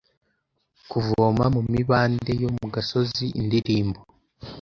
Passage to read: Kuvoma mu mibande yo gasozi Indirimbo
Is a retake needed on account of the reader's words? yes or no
yes